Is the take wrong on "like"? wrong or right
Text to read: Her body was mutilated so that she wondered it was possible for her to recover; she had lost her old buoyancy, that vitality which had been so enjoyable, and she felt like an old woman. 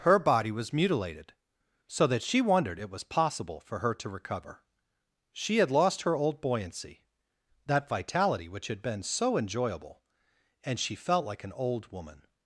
right